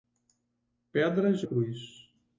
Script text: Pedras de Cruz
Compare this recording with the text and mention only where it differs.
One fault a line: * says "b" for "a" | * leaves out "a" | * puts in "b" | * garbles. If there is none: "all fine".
all fine